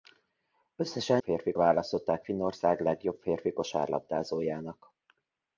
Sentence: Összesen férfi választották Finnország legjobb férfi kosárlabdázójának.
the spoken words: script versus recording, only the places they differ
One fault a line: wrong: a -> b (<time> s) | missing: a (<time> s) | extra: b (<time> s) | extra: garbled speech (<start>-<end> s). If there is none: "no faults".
no faults